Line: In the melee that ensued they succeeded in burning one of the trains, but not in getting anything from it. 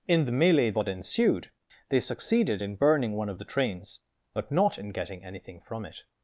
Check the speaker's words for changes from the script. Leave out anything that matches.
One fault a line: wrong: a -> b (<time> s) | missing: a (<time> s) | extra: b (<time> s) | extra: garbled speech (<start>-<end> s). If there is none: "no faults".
no faults